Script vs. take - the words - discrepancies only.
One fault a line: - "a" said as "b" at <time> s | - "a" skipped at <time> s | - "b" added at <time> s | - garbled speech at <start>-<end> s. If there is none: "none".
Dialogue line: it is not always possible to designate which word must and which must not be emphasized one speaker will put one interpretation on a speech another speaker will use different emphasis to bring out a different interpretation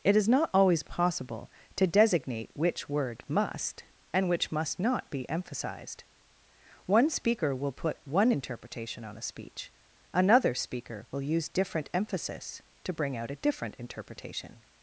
none